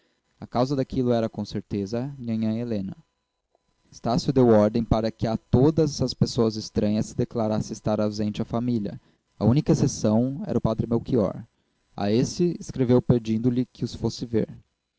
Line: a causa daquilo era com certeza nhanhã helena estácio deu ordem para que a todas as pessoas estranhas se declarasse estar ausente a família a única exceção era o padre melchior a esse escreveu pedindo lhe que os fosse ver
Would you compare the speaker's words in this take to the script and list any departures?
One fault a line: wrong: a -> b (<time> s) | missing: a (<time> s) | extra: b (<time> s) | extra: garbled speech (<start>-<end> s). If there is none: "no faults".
no faults